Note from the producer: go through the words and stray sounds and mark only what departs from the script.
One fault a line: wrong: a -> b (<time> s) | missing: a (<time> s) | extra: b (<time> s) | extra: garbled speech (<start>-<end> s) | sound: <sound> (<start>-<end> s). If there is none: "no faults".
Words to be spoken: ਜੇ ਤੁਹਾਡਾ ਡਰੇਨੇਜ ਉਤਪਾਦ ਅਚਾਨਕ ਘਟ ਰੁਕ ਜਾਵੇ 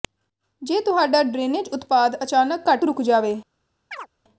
sound: chirp (3.9-4.1 s)